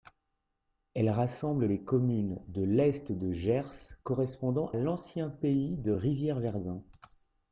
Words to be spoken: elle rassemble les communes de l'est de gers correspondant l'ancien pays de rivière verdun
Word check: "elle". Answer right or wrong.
right